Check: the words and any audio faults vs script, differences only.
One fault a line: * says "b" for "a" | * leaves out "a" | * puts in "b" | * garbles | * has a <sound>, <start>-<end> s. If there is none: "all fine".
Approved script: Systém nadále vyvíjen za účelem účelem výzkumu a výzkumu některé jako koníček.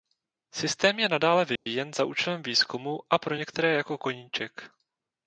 * puts in "je"
* has a dropout, 1.6-1.7 s
* leaves out "účelem"
* says "pro" for "výzkumu"